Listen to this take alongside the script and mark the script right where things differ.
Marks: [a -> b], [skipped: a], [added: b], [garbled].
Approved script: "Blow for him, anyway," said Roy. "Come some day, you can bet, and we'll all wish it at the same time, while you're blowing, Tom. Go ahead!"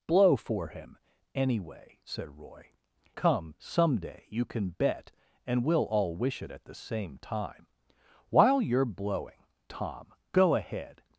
"Blow for him, anyway," said Roy. "Come some day, you can bet, and we'll all wish it at the same time, while you're blowing, Tom. Go ahead!"